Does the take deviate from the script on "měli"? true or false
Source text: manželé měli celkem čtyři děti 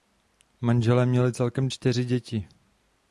false